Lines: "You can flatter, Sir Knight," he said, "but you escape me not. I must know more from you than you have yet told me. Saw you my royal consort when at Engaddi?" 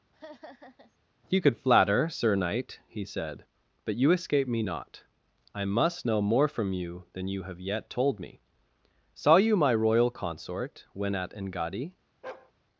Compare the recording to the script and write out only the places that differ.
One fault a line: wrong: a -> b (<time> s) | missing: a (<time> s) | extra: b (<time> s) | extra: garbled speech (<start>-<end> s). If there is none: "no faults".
wrong: can -> could (1.4 s)